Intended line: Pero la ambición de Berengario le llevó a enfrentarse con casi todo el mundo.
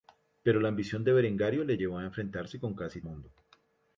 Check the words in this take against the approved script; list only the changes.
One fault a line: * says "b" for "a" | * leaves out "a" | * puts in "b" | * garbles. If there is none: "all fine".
* leaves out "todo el"